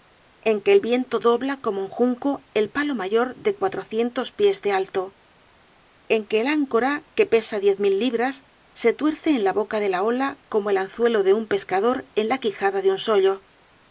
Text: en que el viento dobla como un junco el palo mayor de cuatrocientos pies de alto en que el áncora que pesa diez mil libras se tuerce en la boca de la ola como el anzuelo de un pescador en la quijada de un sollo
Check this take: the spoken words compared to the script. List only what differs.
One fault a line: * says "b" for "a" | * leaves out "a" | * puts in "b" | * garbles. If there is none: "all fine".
all fine